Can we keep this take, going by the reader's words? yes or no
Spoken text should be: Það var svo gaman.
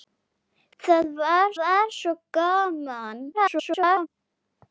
no